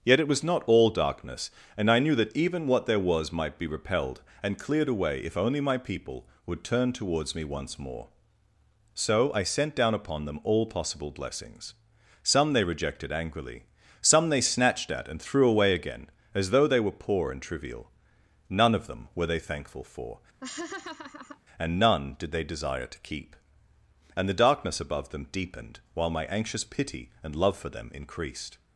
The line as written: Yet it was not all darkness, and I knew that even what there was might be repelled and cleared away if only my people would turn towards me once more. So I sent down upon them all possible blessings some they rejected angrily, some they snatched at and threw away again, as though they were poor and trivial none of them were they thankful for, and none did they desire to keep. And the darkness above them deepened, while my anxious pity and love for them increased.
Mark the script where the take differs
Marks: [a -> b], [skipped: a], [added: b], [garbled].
Yet it was not all darkness, and I knew that even what there was might be repelled and cleared away if only my people would turn towards me once more. So I sent down upon them all possible blessings some they rejected angrily, some they snatched at and threw away again, as though they were poor and trivial none of them were they thankful for, and none did they desire to keep. And the darkness above them deepened, while my anxious pity and love for them increased.